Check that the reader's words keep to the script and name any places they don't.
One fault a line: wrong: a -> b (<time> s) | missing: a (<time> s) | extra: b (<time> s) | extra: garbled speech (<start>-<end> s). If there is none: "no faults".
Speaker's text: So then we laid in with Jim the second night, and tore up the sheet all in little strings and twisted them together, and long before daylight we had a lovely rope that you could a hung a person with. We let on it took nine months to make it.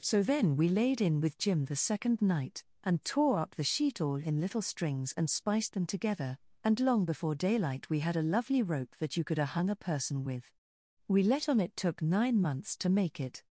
wrong: twisted -> spiced (5.3 s)